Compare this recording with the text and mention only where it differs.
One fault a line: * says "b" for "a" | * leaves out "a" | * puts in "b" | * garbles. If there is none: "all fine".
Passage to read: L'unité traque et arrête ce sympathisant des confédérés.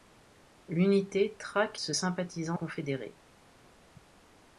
* leaves out "et arrête"
* leaves out "des"